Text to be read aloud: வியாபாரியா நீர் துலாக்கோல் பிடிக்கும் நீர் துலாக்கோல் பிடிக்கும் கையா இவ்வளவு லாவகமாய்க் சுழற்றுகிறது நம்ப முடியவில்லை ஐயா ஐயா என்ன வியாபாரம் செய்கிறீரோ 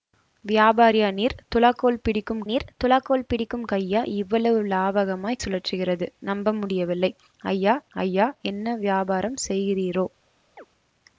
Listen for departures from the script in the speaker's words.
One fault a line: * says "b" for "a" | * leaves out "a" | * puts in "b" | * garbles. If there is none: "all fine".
all fine